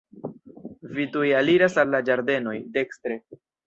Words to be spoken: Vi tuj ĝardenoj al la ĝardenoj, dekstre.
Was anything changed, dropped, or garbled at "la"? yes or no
no